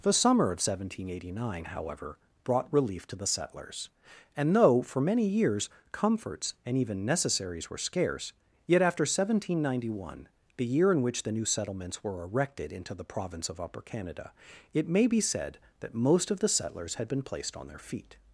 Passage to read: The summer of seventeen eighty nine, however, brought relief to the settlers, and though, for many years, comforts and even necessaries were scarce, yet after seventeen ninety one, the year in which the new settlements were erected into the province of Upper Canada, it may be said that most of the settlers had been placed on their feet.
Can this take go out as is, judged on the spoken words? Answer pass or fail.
pass